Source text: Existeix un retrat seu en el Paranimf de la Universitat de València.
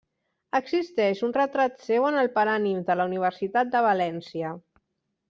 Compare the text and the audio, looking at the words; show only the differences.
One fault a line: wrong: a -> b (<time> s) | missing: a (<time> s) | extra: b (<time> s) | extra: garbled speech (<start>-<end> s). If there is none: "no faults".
no faults